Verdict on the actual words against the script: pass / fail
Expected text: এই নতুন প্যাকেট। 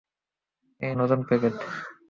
pass